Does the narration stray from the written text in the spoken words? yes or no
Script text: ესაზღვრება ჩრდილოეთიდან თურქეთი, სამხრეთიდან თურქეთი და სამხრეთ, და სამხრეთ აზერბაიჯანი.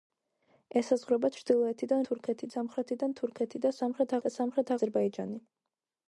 no